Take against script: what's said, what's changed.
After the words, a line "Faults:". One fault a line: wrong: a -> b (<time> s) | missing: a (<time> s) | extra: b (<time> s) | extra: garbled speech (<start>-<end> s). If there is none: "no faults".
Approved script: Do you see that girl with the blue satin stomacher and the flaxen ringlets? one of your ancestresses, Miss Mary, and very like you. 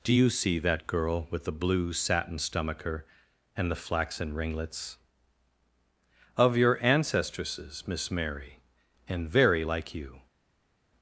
Do you see that girl with the blue satin stomacher and the flaxen ringlets? of your ancestresses, Miss Mary, and very like you.
Faults:
missing: one (5.0 s)